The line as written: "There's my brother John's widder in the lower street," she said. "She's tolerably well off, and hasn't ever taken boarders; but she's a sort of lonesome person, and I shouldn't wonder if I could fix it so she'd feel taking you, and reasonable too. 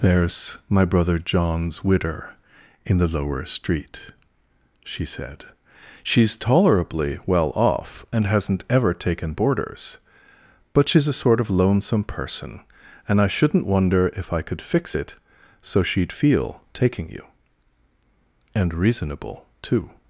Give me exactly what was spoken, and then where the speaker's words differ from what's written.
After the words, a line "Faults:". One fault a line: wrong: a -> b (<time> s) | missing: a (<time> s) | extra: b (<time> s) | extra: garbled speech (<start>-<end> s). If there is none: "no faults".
"There's my brother John's widder in the lower street," she said. "She's tolerably well off, and hasn't ever taken boarders; but she's a sort of lonesome person, and I shouldn't wonder if I could fix it so she'd feel taking you, and reasonable too.
Faults:
no faults